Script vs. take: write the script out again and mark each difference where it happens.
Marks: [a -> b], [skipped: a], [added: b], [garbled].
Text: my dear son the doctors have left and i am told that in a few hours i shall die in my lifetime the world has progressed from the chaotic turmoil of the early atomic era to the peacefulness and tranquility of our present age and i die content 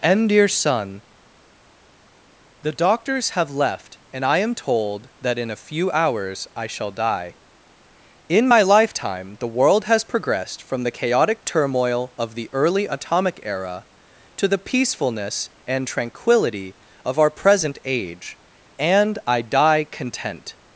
[my -> and] dear son the doctors have left and i am told that in a few hours i shall die in my lifetime the world has progressed from the chaotic turmoil of the early atomic era to the peacefulness and tranquility of our present age and i die content